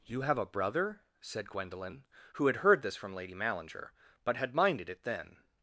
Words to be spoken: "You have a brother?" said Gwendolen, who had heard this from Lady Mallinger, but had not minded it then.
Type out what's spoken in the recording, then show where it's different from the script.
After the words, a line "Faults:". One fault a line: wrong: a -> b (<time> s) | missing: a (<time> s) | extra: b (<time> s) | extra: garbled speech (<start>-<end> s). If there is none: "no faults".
"You have a brother?" said Gwendolen, who had heard this from Lady Mallinger, but had minded it then.
Faults:
missing: not (4.5 s)